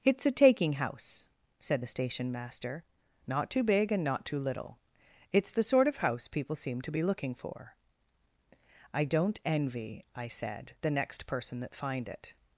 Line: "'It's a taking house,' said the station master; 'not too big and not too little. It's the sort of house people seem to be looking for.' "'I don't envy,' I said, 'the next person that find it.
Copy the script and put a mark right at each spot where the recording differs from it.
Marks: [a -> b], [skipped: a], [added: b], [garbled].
"'It's a taking house,' said the station master; 'not too big and not too little. It's the sort of house people seem to be looking for.' "'I don't envy,' I said, 'the next person that find it.